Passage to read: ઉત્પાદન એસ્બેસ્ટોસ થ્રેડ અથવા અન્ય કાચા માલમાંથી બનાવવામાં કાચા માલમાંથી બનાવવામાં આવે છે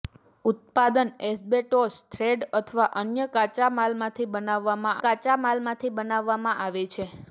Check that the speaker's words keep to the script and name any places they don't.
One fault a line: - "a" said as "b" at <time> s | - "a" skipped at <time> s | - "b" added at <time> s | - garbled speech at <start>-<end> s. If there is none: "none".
none